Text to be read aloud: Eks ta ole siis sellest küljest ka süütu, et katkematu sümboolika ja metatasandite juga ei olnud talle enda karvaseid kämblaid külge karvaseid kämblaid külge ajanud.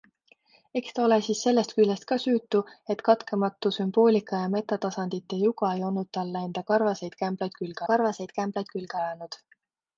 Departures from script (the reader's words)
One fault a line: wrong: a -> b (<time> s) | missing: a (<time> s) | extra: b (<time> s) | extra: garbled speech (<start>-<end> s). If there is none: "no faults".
no faults